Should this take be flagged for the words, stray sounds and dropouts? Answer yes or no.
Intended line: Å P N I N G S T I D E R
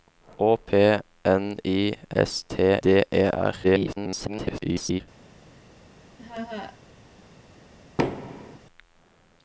yes